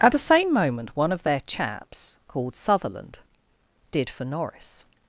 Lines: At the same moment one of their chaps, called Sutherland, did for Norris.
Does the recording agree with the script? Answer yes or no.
yes